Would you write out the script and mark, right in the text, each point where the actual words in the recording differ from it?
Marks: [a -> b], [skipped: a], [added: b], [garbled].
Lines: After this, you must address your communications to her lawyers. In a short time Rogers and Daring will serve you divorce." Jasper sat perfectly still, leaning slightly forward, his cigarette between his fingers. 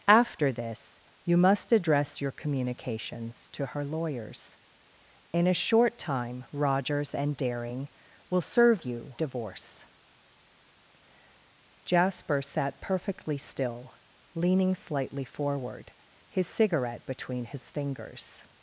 After this, you must address your communications to her lawyers. In a short time Rogers and Daring will serve you divorce." Jasper sat perfectly still, leaning slightly forward, his cigarette between his fingers.